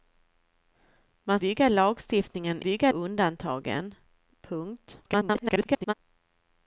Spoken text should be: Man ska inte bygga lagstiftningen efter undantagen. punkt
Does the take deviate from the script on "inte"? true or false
true